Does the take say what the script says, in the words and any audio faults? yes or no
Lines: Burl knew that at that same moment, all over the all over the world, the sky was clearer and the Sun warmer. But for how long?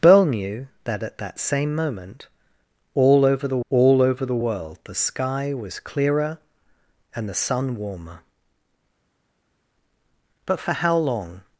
yes